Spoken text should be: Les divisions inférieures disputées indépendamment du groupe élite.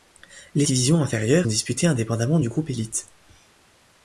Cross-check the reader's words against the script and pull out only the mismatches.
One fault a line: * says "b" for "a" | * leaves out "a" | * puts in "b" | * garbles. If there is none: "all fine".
all fine